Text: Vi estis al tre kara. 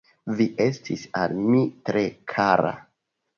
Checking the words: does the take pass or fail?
fail